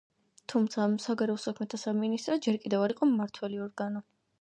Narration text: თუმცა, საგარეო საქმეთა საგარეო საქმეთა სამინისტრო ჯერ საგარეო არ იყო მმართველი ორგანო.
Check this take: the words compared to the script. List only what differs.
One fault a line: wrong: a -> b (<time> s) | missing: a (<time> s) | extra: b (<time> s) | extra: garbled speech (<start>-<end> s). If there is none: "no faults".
missing: საგარეო საქმეთა (1.8 s)
wrong: საგარეო -> კიდევ (2.7 s)